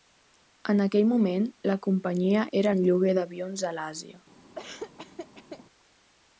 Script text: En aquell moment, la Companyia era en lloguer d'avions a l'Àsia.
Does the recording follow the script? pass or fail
pass